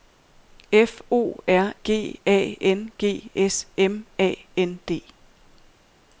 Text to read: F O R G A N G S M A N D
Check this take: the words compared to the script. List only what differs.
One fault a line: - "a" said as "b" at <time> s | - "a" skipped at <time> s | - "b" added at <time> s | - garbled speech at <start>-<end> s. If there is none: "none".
none